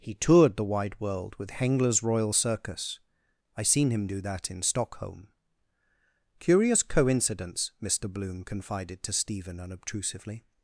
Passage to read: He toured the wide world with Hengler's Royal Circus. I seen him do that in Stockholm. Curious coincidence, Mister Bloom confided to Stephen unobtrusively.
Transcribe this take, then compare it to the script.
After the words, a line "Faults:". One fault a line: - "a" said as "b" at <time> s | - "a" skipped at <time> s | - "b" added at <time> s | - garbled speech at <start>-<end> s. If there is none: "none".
He toured the wide world with Hengler's Royal Circus. I seen him do that in Stockholm. Curious coincidence, Mister Bloom confided to Stephen unobtrusively.
Faults:
none